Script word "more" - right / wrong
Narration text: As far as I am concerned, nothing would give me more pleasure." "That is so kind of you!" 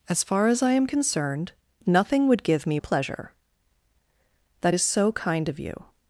wrong